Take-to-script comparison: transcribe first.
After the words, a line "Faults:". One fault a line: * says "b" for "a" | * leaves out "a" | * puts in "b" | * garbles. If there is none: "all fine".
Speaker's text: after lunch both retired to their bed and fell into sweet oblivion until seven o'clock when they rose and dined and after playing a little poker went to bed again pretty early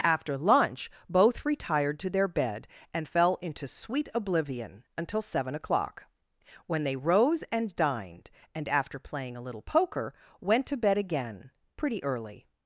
after lunch both retired to their bed and fell into sweet oblivion until seven o'clock when they rose and dined and after playing a little poker went to bed again pretty early
Faults:
all fine